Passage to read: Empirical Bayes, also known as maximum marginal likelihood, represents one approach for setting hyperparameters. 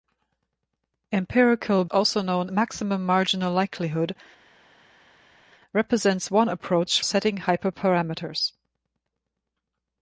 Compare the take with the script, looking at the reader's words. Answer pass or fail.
fail